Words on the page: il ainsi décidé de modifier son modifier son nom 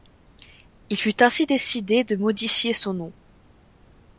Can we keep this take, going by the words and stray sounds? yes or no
no